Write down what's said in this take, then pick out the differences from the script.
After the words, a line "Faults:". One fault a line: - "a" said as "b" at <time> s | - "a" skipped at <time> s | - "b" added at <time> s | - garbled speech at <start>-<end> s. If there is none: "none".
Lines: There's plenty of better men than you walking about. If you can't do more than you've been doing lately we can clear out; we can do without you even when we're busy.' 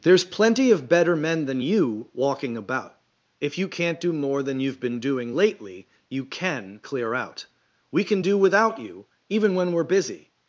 There's plenty of better men than you walking about. If you can't do more than you've been doing lately you can clear out; we can do without you even when we're busy.'
Faults:
- "we" said as "you" at 6.1 s